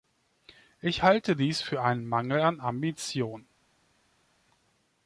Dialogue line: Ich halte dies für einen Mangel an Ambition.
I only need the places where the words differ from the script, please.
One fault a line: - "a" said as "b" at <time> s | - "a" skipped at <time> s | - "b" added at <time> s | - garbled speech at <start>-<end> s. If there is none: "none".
none